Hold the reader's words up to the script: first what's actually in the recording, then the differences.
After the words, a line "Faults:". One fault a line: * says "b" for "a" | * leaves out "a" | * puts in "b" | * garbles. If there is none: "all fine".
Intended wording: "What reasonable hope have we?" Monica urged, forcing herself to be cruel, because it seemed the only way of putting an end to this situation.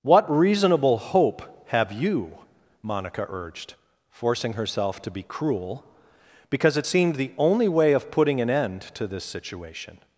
"What reasonable hope have you?" Monica urged, forcing herself to be cruel, because it seemed the only way of putting an end to this situation.
Faults:
* says "you" for "we"